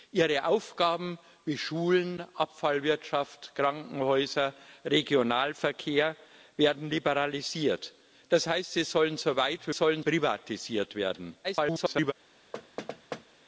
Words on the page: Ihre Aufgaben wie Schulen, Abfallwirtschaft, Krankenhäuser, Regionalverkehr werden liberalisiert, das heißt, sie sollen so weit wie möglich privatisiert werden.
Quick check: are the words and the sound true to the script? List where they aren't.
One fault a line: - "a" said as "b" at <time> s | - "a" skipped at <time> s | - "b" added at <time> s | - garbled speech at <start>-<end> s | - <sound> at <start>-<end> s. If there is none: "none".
- "möglich" said as "sollen" at 9.7 s
- garbled speech at 11.4-12.1 s
- thud at 12.5-13.3 s